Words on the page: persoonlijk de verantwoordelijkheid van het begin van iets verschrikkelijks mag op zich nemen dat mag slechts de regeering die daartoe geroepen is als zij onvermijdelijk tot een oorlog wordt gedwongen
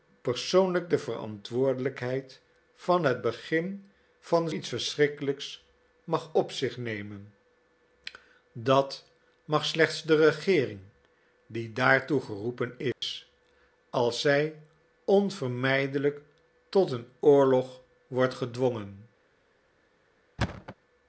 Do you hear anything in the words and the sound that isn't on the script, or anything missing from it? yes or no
yes